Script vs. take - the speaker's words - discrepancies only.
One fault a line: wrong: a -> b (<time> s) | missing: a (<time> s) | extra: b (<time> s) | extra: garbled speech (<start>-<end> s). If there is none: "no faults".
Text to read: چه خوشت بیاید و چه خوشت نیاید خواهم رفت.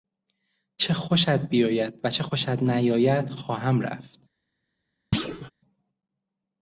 no faults